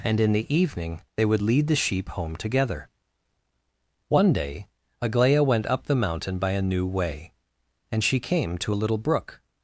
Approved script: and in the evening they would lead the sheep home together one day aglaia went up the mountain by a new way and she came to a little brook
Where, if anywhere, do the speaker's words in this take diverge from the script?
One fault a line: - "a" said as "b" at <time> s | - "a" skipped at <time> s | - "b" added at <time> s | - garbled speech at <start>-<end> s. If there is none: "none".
none